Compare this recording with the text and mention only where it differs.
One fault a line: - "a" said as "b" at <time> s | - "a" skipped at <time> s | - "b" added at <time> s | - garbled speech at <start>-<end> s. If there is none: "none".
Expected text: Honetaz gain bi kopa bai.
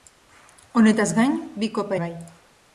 none